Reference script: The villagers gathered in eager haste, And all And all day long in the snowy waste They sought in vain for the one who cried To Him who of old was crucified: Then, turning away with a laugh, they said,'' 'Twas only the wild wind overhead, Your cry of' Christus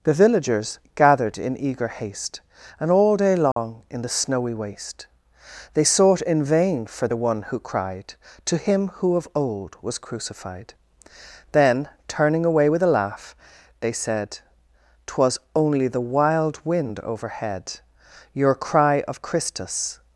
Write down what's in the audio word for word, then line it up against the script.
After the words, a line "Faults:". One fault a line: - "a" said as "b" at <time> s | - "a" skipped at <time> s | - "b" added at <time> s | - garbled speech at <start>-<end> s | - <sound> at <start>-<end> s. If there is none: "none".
The villagers gathered in eager haste, And all day long in the snowy waste They sought in vain for the one who cried To Him who of old was crucified: Then, turning away with a laugh, they said,'' 'Twas only the wild wind overhead, Your cry of' Christus
Faults:
- "And all" skipped at 3.2 s
- dropout at 3.5-3.6 s